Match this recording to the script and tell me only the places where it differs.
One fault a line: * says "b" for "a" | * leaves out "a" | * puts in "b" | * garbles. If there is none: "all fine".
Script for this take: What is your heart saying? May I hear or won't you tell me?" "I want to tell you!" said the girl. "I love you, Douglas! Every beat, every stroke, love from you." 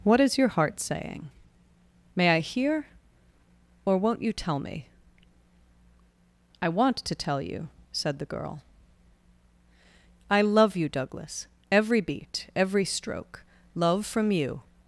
all fine